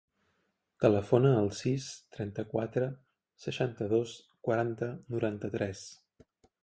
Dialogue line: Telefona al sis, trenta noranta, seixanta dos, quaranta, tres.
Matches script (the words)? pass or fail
fail